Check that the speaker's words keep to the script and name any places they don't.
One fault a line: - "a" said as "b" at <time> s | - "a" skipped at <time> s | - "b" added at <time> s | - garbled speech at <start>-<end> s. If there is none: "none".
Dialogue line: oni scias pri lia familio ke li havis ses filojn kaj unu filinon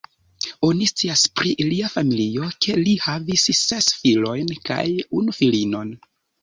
none